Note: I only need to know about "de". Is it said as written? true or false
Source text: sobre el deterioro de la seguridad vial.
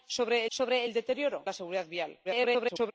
false